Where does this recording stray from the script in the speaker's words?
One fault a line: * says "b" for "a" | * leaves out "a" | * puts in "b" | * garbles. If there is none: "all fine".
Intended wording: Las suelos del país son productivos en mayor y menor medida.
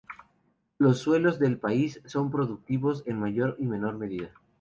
* says "Los" for "Las"